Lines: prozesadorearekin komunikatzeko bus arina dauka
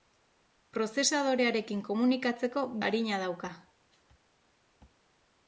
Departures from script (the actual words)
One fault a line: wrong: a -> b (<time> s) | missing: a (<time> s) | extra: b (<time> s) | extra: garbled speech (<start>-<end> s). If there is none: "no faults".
missing: bus (2.7 s)